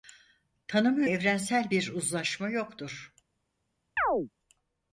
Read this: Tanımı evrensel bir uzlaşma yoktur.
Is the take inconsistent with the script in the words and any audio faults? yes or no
yes